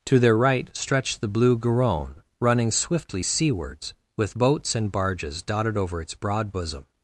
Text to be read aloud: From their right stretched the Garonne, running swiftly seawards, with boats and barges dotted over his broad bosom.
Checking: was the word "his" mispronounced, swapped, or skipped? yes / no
yes